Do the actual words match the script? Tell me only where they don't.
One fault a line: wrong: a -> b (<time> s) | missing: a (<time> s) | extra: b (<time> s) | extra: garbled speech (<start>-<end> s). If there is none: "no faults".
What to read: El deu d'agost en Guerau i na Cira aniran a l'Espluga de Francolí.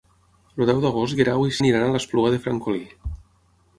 missing: Cira (1.6 s)